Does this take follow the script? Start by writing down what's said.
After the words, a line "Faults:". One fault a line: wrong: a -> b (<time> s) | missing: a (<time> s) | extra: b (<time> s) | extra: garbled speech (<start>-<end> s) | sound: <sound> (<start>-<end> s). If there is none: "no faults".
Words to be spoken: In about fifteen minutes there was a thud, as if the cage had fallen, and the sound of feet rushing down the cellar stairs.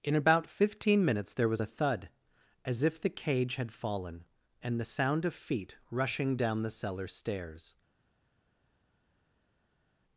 In about fifteen minutes there was a thud, as if the cage had fallen, and the sound of feet rushing down the cellar stairs.
Faults:
no faults